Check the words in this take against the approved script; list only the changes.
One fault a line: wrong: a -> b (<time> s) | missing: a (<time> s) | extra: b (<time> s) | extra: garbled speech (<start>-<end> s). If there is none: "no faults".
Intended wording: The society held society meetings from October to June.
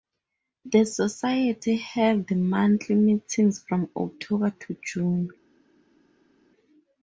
wrong: society -> monthly (2.3 s)